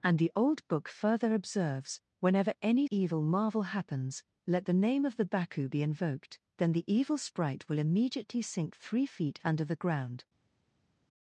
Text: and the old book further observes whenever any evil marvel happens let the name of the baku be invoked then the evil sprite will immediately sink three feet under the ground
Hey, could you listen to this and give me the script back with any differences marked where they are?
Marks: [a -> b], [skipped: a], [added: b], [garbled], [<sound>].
and the old book further observes whenever any evil marvel happens let the name of the baku be invoked then the evil sprite will immediately sink three feet under the ground